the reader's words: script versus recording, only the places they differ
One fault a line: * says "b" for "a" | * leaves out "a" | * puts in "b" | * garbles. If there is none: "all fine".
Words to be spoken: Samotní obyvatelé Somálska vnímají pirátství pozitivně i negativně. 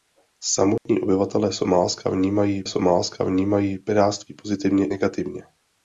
* puts in "Somálska vnímají"
* leaves out "i"